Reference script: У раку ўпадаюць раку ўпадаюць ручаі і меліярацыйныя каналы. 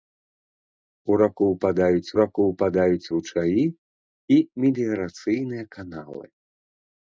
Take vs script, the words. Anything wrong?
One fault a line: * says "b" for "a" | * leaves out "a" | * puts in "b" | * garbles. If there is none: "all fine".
all fine